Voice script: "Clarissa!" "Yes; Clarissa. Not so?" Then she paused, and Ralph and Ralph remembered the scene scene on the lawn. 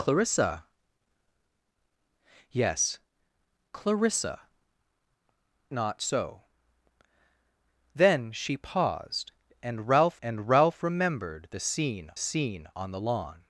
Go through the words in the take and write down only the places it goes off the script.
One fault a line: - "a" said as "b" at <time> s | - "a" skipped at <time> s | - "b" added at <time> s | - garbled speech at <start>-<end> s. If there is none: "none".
none